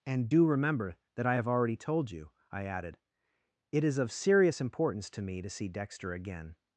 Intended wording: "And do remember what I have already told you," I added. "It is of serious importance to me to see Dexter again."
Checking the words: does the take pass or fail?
fail